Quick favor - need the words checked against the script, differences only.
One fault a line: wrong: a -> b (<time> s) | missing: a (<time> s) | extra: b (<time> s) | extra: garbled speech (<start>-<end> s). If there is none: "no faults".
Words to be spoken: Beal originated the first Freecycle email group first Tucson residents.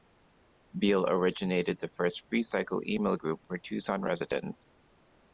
wrong: first -> for (3.4 s)